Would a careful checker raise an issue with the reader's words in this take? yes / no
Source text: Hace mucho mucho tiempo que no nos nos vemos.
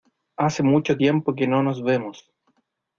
yes